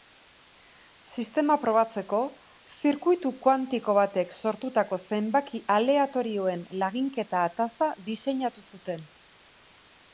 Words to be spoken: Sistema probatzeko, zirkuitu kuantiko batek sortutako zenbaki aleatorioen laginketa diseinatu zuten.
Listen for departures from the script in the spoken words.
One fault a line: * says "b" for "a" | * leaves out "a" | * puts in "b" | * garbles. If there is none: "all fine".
* puts in "ataza"